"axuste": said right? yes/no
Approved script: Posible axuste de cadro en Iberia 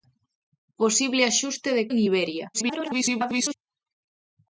yes